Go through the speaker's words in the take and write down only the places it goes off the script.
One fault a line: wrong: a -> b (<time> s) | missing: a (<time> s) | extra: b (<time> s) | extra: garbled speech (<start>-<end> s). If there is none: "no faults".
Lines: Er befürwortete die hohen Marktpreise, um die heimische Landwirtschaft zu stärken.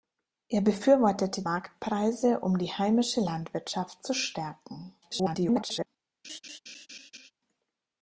missing: die hohen (1.4 s)
extra: garbled speech (5.0-5.9 s)